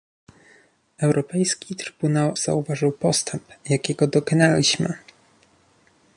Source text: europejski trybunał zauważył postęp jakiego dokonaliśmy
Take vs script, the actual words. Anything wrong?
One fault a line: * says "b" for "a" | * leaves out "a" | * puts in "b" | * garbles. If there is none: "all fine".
all fine